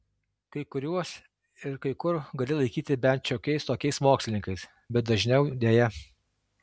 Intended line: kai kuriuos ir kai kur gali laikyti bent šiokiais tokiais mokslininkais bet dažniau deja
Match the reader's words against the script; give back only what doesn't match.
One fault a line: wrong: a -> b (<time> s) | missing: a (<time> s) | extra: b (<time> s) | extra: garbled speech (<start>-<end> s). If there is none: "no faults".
no faults